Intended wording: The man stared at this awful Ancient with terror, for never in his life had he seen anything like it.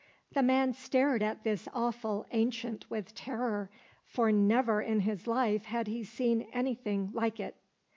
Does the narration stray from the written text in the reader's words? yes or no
no